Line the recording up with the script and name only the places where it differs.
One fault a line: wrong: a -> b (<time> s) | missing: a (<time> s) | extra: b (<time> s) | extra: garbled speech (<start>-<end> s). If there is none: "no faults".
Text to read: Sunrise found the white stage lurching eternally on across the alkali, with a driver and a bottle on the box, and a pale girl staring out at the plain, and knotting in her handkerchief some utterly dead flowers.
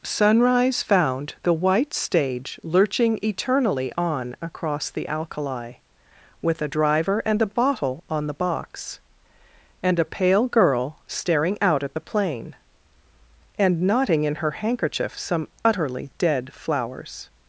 no faults